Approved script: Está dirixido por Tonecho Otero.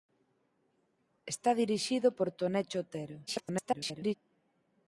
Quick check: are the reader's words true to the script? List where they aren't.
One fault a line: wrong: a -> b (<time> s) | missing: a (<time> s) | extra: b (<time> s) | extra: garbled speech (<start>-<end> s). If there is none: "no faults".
extra: garbled speech (3.3-4.1 s)